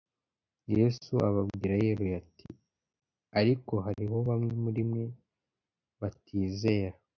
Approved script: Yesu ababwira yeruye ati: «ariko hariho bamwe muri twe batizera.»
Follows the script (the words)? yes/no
no